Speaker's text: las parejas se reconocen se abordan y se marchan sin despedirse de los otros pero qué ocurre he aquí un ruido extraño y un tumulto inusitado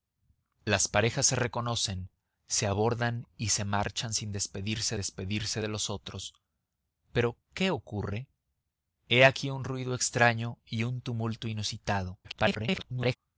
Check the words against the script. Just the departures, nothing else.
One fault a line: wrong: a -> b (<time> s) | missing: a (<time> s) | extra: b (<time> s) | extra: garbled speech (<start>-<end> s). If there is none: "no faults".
extra: despedirse (4.9 s)
extra: garbled speech (12.2-13.2 s)